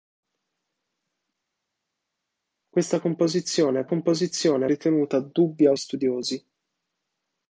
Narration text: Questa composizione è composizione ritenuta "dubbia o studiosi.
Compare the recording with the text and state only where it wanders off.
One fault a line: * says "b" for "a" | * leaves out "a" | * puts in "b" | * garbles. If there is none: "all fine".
all fine